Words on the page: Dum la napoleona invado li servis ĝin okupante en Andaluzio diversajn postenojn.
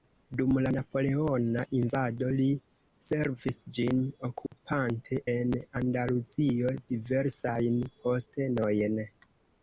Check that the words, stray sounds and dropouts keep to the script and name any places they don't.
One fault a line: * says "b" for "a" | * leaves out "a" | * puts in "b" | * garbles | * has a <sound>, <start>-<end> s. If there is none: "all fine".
* has a dropout, 4.5-4.5 s